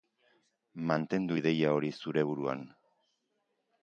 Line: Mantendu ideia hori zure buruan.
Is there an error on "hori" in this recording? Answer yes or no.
no